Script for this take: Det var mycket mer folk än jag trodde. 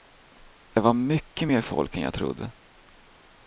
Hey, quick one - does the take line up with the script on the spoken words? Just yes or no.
yes